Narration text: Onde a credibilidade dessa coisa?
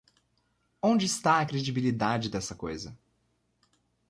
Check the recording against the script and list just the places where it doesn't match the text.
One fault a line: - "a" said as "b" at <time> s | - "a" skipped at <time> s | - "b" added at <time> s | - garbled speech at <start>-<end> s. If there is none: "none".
- "está" added at 1.1 s